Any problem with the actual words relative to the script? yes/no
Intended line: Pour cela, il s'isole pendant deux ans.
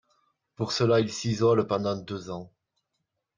no